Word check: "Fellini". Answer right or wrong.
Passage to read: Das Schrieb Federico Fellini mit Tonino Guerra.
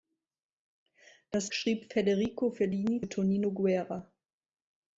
right